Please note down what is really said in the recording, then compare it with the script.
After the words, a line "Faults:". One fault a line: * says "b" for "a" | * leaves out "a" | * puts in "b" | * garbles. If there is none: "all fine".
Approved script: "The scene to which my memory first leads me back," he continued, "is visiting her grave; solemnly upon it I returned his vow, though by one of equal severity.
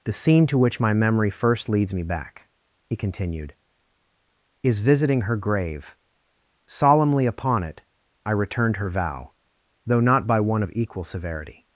"The scene to which my memory first leads me back," he continued, "is visiting her grave; solemnly upon it I returned her vow, though not by one of equal severity.
Faults:
* says "her" for "his"
* puts in "not"